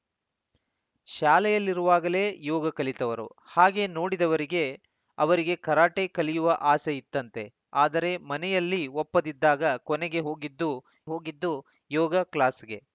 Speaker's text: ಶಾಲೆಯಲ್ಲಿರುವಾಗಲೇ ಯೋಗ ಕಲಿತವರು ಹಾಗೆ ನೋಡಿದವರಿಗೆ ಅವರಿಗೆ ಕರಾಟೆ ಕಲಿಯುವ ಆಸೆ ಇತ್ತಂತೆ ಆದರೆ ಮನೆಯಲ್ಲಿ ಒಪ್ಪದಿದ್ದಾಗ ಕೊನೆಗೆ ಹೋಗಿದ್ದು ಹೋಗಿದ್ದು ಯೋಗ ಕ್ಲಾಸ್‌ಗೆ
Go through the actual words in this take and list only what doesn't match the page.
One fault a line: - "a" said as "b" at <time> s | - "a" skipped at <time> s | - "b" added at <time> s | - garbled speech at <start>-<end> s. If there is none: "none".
none